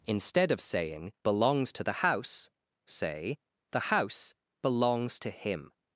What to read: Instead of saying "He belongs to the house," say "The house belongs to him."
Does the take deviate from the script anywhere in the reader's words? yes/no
yes